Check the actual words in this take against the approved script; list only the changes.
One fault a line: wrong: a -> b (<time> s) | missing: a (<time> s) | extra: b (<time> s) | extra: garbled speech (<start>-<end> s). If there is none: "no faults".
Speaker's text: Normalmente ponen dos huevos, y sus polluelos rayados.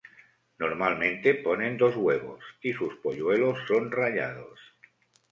extra: son (3.7 s)